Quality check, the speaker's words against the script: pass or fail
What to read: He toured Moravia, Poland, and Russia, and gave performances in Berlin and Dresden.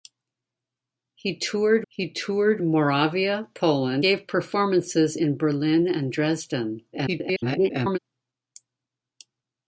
fail